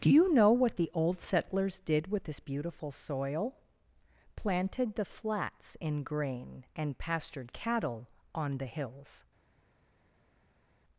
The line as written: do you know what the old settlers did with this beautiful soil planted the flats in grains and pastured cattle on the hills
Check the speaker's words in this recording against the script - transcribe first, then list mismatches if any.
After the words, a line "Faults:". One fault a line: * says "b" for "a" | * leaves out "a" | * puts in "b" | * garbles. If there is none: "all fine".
do you know what the old settlers did with this beautiful soil planted the flats in grain and pastured cattle on the hills
Faults:
* says "grain" for "grains"